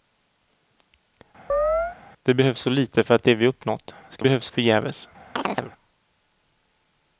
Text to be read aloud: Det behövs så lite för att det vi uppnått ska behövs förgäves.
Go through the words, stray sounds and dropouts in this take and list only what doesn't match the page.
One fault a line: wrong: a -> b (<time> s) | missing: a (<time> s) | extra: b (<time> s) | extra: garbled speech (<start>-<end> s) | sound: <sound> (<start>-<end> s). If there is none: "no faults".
sound: chirp (1.5-2.0 s)
sound: chirp (5.4-5.7 s)